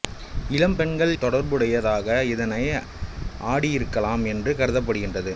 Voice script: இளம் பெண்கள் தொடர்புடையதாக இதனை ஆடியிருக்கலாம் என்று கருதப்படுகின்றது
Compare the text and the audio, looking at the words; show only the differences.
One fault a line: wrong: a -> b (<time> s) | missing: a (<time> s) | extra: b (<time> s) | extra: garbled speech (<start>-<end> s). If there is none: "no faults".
no faults